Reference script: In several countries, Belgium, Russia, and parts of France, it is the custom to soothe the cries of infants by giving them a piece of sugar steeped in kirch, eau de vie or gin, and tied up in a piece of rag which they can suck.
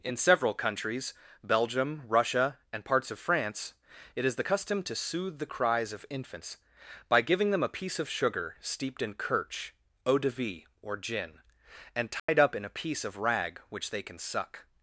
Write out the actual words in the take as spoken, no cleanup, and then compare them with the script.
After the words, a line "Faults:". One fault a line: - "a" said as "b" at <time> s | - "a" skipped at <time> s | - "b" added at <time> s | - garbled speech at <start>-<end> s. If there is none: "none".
In several countries, Belgium, Russia, and parts of France, it is the custom to soothe the cries of infants by giving them a piece of sugar steeped in kirch, eau de vie or gin, and tied up in a piece of rag which they can suck.
Faults:
none